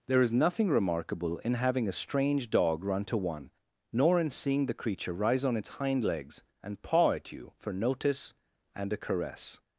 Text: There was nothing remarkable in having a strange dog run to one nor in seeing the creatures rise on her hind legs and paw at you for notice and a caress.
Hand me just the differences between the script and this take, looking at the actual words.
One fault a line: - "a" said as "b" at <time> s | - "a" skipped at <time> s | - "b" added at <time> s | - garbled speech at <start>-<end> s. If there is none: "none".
- "was" said as "is" at 0.2 s
- "creatures" said as "creature" at 4.7 s
- "her" said as "its" at 5.6 s